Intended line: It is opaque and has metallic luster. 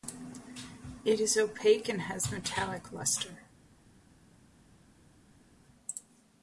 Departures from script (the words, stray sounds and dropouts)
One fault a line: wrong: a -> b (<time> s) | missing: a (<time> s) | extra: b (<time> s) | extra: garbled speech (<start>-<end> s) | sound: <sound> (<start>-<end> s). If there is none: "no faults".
no faults